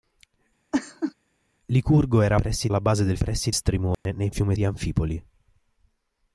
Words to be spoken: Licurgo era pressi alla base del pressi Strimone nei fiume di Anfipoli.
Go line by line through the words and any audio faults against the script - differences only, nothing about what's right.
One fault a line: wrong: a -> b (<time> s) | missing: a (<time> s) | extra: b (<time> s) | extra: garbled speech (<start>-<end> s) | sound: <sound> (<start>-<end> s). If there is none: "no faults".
sound: laugh (0.7-1.1 s)
sound: dropout (3.9-4.1 s)